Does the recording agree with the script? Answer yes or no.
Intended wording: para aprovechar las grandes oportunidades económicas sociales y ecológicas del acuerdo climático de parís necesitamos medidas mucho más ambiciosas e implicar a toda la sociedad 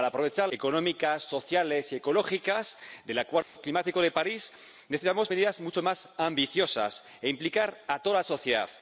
no